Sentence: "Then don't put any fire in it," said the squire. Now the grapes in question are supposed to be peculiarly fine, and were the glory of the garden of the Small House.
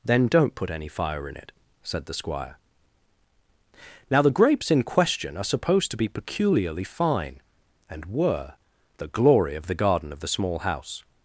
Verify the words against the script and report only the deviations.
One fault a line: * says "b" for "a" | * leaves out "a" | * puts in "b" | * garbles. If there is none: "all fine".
all fine